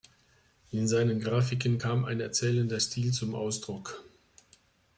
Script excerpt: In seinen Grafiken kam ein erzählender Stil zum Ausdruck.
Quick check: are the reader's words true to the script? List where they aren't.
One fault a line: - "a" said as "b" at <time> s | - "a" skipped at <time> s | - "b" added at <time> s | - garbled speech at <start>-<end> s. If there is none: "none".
none